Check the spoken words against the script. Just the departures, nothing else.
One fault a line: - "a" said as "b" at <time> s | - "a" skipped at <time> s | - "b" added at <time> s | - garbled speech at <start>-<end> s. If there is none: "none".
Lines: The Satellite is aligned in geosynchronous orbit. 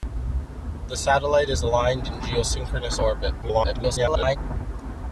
- garbled speech at 3.4-4.4 s